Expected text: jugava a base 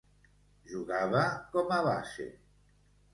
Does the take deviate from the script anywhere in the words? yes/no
yes